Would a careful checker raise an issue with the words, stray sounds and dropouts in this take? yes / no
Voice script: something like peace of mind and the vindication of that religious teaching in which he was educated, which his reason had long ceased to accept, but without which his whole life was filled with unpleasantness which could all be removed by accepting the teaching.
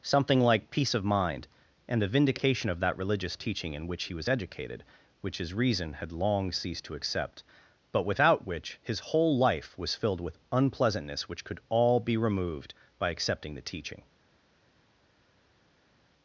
no